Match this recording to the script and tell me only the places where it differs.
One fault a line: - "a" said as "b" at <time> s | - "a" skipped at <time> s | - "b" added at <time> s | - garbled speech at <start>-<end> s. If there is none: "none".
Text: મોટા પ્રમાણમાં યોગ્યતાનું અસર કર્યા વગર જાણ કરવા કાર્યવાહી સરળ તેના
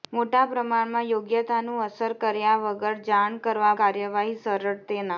none